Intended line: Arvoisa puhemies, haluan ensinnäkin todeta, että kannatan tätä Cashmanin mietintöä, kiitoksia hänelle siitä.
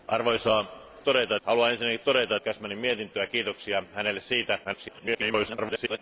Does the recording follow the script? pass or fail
fail